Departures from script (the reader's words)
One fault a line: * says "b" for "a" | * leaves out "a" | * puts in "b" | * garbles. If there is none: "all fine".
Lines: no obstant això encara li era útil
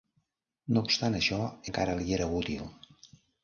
all fine